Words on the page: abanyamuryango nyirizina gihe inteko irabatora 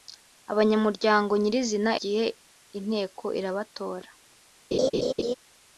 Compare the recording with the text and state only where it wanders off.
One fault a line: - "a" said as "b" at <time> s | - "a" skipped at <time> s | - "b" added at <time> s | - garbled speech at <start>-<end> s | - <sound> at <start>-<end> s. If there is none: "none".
- laugh at 4.7-5.3 s